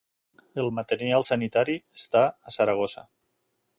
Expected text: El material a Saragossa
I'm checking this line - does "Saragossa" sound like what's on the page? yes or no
yes